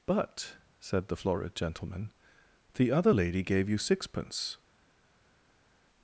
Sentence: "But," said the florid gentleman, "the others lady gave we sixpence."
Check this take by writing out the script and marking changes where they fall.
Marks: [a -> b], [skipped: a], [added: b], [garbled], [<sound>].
"But," said the florid gentleman, "the [others -> other] lady gave [we -> you] sixpence."